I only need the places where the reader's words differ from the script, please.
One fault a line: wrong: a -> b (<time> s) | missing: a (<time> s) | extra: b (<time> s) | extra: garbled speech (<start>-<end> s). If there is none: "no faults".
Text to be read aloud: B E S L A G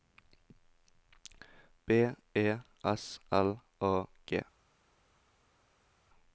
no faults